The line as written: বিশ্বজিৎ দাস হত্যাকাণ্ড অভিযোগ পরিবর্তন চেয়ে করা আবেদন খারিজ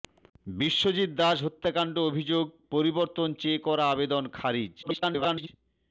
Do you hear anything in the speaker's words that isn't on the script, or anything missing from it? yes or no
yes